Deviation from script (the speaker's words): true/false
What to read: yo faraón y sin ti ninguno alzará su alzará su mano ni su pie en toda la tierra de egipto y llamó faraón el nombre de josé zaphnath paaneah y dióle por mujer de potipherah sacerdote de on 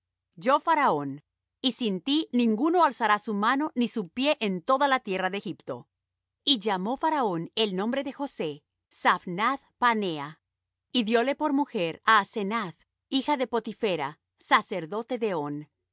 true